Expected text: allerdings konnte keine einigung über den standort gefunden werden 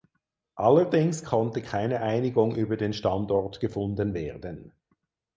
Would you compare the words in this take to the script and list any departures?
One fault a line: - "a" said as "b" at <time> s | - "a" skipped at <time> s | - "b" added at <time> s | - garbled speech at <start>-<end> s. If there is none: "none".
none